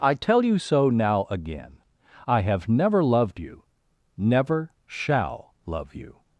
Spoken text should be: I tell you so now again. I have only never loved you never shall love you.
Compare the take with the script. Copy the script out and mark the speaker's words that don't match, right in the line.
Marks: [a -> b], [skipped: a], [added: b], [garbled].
I tell you so now again. I have [skipped: only] never loved you never shall love you.